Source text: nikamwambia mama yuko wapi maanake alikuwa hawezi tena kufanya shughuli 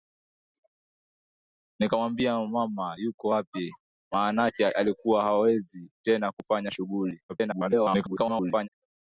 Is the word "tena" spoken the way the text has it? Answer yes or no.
yes